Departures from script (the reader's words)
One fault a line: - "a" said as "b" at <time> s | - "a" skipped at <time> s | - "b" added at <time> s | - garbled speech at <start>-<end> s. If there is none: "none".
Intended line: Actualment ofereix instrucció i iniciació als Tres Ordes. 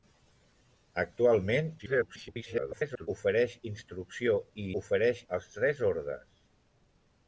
- garbled speech at 1.8-3.1 s
- "iniciació" said as "ofereix" at 4.8 s